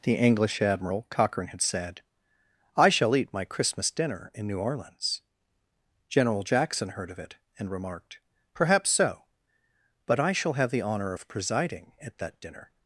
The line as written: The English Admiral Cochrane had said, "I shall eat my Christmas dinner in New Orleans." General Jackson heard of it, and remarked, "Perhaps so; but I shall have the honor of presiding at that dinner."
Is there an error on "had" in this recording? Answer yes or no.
no